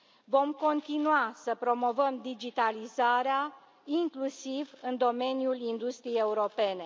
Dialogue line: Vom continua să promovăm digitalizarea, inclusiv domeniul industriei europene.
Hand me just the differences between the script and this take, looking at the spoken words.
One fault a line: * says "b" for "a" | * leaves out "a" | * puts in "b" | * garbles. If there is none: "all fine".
* puts in "în"